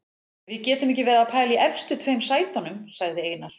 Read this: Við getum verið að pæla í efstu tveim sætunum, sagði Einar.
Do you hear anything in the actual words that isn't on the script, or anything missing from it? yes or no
yes